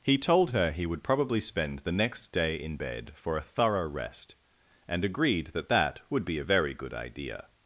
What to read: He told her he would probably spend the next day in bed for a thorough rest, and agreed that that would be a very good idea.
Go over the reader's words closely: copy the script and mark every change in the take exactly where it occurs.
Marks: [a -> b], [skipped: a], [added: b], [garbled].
He told her he would probably spend the next day in bed for a thorough rest, and agreed that that would be a very good idea.